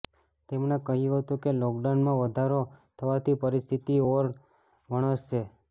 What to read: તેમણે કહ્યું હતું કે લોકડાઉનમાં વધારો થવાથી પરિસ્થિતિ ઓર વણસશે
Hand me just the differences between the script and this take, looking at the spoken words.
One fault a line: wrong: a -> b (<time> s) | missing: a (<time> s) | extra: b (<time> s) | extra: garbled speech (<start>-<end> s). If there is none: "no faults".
no faults